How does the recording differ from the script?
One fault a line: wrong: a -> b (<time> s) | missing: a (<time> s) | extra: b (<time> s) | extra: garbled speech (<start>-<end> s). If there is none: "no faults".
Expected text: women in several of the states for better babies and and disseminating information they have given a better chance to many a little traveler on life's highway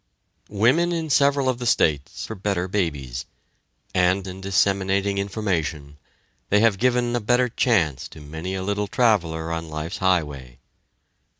no faults